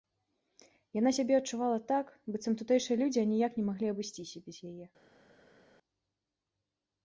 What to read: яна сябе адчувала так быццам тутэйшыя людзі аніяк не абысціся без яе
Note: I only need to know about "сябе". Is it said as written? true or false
true